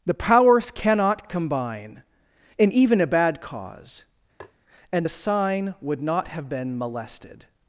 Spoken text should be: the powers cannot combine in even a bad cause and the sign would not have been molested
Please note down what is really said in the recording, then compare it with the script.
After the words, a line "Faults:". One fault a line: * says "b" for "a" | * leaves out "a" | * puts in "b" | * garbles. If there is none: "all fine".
the powers cannot combine in even a bad cause and the sign would not have been molested
Faults:
all fine